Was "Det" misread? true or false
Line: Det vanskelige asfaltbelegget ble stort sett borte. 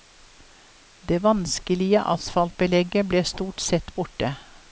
false